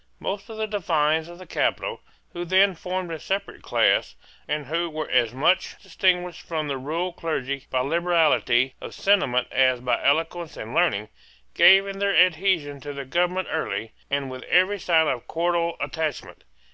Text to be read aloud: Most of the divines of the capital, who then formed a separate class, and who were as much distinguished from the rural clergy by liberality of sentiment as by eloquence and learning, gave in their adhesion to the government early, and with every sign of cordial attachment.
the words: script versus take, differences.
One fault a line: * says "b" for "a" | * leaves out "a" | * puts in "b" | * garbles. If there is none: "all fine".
all fine